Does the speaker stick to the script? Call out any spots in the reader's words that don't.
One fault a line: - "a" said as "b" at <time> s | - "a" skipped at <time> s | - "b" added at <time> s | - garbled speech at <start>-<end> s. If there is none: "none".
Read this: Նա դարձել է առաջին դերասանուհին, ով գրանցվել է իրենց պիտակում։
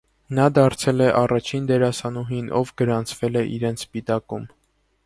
none